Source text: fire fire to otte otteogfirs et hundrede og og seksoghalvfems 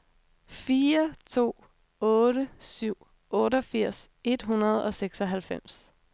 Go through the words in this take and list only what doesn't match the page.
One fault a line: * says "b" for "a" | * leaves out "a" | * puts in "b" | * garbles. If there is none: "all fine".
* leaves out "fire"
* puts in "syv"
* leaves out "og"